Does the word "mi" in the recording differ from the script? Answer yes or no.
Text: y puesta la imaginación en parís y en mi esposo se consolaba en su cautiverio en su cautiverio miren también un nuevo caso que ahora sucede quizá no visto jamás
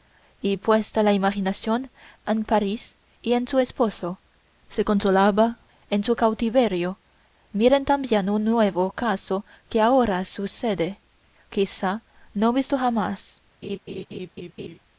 yes